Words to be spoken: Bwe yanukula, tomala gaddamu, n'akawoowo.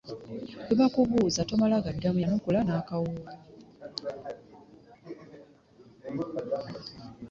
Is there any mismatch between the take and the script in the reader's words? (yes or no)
yes